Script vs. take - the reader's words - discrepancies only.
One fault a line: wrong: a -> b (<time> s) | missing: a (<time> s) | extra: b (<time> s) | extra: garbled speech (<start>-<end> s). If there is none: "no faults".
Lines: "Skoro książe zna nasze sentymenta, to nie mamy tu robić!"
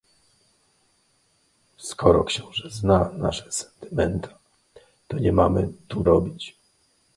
no faults